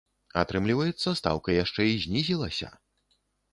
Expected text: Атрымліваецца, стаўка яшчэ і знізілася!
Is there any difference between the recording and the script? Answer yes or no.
no